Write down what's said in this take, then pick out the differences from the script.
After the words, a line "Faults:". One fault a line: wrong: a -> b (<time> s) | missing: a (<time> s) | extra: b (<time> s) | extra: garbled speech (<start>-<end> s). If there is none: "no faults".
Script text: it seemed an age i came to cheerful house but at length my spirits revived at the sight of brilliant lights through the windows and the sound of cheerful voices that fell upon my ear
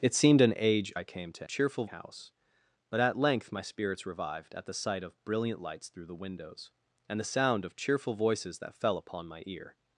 it seemed an age i came to cheerful house but at length my spirits revived at the sight of brilliant lights through the windows and the sound of cheerful voices that fell upon my ear
Faults:
no faults